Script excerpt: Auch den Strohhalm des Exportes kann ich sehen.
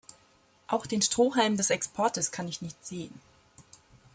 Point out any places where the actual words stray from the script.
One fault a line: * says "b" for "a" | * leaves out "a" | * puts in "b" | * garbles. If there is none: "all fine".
* puts in "nicht"